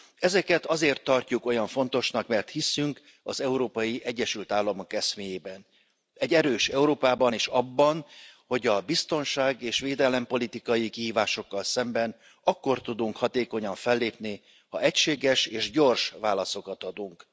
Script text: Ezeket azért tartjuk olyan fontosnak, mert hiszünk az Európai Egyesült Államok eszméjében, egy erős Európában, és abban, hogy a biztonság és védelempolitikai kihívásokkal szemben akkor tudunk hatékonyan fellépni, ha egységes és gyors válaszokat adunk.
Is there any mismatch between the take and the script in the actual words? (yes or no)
no